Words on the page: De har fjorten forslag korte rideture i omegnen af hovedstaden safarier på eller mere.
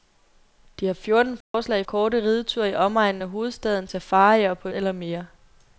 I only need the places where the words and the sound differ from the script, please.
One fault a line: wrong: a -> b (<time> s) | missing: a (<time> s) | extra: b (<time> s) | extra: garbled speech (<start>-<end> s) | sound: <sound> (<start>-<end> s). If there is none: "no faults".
sound: dropout (1.4-1.5 s)